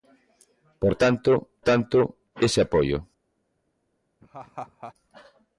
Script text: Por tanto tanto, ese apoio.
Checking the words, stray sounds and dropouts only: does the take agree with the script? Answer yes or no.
no